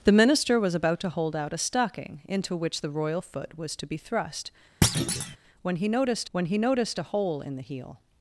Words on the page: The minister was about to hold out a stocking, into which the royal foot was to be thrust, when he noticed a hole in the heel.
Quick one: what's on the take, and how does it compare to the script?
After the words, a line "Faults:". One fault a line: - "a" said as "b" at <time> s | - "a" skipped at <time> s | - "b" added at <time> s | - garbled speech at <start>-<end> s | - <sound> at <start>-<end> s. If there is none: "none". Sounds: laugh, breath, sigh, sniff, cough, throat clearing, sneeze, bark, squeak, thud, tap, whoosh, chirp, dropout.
The minister was about to hold out a stocking, into which the royal foot was to be thrust, when he noticed when he noticed a hole in the heel.
Faults:
- thud at 4.8-5.4 s
- "when he noticed" added at 6.3 s